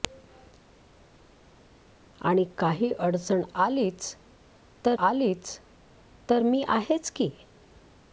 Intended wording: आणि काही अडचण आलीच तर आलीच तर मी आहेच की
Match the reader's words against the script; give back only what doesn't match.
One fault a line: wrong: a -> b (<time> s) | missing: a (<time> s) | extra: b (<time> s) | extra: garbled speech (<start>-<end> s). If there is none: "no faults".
no faults